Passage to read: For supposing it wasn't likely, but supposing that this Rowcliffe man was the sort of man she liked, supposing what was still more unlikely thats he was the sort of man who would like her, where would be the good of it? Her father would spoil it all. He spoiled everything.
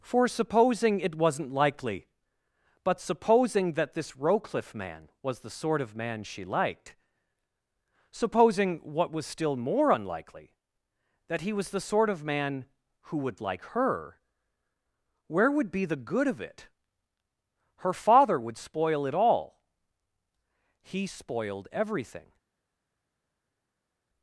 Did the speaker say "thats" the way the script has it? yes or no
no